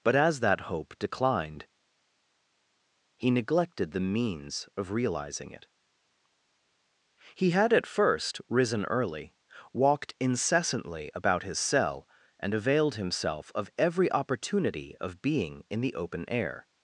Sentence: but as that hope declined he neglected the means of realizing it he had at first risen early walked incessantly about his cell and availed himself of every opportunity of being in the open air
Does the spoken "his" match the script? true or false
true